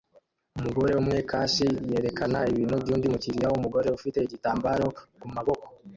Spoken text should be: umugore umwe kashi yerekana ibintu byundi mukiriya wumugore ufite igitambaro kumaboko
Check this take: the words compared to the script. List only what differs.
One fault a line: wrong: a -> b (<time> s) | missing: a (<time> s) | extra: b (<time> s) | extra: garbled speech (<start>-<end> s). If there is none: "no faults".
no faults